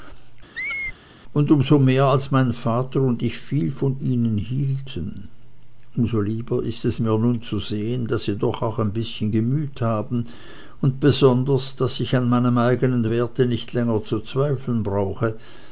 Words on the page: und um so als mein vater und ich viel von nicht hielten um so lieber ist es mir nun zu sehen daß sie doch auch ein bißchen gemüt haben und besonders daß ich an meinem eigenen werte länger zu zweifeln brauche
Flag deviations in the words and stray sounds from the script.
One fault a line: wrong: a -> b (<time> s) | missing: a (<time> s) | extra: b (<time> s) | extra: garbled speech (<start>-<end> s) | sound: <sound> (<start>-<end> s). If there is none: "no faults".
sound: squeak (0.5-1.0 s)
extra: mehr (1.8 s)
wrong: nicht -> ihnen (4.0 s)
extra: nicht (13.5 s)